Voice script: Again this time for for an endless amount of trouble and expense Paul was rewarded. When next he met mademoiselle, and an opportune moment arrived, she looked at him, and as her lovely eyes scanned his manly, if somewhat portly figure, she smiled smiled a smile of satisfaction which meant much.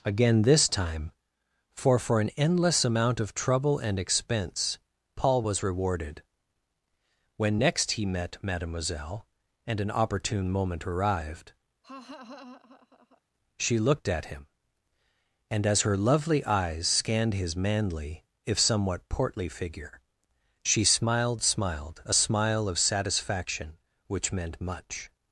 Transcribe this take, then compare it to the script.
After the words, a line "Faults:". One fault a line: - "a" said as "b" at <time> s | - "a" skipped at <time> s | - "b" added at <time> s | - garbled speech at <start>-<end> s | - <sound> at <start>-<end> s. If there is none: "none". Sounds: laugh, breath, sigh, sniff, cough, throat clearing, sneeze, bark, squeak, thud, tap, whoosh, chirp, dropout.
Again this time for for an endless amount of trouble and expense Paul was rewarded. When next he met mademoiselle, and an opportune moment arrived, she looked at him, and as her lovely eyes scanned his manly, if somewhat portly figure, she smiled smiled a smile of satisfaction which meant much.
Faults:
- laugh at 11.8-13.2 s